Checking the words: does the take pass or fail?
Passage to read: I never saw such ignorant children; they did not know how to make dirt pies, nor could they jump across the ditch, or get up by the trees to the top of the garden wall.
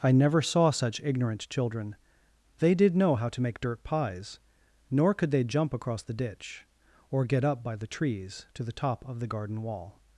fail